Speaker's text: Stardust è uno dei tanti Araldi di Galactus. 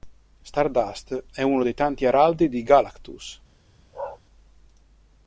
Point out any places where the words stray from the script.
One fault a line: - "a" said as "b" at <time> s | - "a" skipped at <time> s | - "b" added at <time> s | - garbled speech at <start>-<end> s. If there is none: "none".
none